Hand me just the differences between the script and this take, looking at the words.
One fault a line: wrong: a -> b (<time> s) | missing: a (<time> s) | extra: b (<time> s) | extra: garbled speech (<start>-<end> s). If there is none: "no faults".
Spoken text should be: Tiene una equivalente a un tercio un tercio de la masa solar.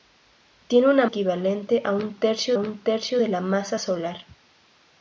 no faults